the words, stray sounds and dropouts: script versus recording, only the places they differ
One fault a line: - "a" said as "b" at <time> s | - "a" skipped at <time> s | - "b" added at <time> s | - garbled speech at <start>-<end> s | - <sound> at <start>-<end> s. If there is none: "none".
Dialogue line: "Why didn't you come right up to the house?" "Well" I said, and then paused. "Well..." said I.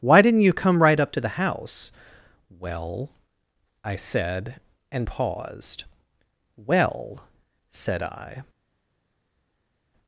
- "then" skipped at 5.0 s